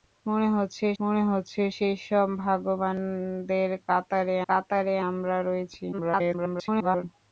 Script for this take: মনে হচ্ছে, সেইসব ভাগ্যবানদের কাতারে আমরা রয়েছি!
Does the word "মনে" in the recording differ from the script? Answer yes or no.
no